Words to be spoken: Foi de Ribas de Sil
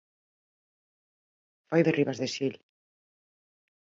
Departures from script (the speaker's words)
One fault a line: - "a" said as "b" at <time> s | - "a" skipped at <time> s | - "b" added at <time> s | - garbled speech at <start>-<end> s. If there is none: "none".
none